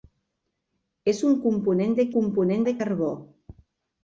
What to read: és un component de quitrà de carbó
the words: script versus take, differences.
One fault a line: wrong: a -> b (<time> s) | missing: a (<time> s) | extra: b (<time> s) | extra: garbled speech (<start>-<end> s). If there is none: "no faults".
wrong: quitrà -> component (2.1 s)